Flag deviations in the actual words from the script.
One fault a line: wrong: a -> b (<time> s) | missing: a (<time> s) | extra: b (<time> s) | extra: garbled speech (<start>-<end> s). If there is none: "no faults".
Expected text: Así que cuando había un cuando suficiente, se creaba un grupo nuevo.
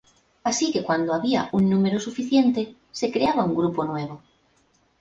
wrong: cuando -> número (1.7 s)